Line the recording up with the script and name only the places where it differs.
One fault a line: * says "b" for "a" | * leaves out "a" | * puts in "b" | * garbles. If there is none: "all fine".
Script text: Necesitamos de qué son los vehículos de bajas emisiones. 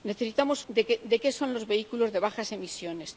all fine